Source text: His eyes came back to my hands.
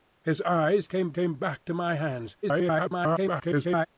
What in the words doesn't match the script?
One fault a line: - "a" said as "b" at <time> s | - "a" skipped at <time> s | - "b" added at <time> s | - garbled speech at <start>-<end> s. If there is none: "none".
- "came" added at 1.1 s
- garbled speech at 2.4-3.9 s